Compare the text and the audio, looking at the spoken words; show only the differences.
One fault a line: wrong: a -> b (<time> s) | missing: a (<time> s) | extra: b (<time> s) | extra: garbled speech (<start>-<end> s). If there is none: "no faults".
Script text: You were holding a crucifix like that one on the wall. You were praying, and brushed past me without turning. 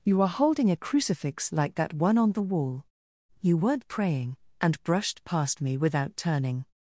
wrong: were -> are (0.2 s)
wrong: were -> weren't (3.5 s)